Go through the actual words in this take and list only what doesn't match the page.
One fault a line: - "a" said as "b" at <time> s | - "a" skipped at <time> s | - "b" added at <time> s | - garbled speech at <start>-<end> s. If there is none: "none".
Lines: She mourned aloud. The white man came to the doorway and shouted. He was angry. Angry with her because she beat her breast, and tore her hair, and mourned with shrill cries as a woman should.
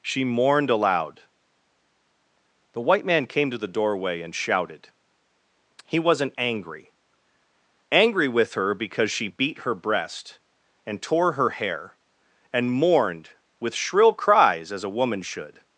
- "was" said as "wasn't" at 6.0 s